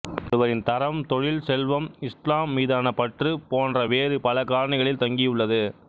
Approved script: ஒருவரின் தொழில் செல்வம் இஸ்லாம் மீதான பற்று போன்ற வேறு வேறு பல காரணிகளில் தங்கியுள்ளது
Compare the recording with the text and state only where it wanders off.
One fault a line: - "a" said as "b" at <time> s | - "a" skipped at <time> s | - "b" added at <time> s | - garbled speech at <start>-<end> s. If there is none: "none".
- "தரம்" added at 0.6 s
- "வேறு" skipped at 4.2 s